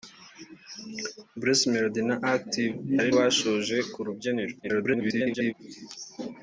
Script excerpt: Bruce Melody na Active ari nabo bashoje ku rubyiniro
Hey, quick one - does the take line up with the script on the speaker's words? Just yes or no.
no